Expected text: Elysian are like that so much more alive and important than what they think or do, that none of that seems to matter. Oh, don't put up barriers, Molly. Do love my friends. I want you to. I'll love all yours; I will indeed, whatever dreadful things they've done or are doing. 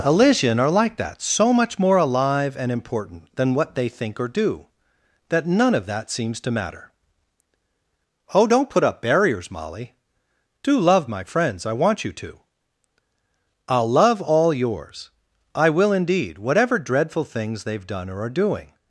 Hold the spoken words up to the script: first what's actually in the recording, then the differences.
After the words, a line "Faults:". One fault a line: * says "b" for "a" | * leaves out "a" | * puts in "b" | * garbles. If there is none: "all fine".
Elysian are like that so much more alive and important than what they think or do, that none of that seems to matter. Oh, don't put up barriers, Molly. Do love my friends. I want you to. I'll love all yours; I will indeed, whatever dreadful things they've done or are doing.
Faults:
all fine